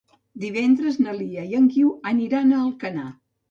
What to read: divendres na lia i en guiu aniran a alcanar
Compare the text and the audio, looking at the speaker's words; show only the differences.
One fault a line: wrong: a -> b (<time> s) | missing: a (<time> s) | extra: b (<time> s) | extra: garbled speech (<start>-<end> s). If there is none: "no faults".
no faults